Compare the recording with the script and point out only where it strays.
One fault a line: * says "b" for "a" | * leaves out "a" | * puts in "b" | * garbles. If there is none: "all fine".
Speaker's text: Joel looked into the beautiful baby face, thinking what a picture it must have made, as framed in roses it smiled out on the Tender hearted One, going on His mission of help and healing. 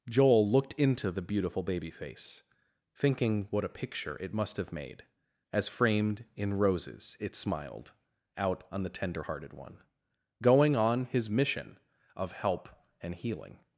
all fine